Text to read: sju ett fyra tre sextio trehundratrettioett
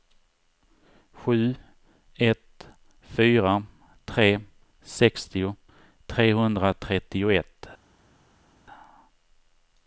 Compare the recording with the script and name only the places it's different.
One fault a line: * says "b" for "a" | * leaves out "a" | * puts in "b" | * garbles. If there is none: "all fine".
all fine